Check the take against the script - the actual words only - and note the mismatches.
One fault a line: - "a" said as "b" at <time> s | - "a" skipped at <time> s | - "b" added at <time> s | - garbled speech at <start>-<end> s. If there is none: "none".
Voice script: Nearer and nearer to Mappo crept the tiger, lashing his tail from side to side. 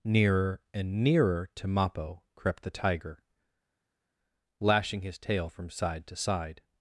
none